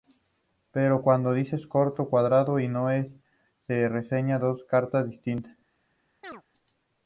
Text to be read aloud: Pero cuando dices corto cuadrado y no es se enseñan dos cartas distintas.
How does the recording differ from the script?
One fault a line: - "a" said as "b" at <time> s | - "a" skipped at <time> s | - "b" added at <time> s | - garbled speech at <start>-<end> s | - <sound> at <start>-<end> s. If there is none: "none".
- chirp at 6.2-6.4 s